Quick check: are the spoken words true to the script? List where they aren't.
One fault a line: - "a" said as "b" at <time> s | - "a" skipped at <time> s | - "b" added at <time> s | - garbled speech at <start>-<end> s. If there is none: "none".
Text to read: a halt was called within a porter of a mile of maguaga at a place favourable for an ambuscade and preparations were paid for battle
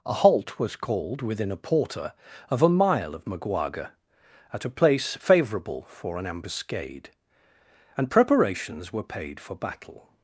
none